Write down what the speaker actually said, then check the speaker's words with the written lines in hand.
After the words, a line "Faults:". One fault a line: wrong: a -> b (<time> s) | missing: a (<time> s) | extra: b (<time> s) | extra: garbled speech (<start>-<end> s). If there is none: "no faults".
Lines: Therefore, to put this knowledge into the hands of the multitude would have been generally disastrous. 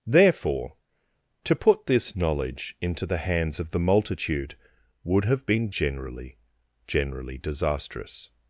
Therefore, to put this knowledge into the hands of the multitude would have been generally generally disastrous.
Faults:
extra: generally (6.9 s)